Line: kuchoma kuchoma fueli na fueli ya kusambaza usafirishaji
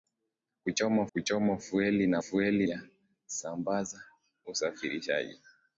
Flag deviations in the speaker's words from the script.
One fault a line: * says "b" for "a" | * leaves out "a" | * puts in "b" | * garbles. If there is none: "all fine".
all fine